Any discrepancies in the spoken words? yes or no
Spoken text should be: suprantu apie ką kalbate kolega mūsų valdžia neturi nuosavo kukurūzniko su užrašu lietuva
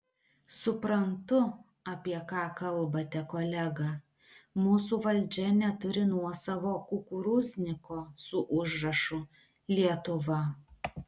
no